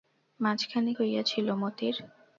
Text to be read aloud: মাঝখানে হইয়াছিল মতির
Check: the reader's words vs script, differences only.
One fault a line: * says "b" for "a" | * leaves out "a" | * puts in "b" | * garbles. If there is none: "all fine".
all fine